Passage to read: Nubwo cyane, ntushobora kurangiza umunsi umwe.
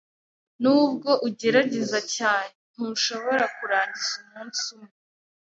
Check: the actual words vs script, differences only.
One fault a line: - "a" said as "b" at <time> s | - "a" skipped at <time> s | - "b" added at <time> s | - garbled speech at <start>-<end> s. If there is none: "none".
- "ugerageza" added at 1.3 s